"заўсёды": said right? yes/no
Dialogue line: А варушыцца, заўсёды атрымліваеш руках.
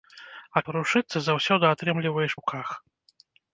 yes